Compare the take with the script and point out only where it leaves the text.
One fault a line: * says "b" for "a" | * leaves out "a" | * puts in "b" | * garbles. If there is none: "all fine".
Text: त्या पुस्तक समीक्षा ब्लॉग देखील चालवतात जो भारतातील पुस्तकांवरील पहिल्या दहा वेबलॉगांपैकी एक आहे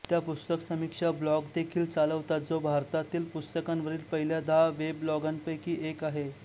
all fine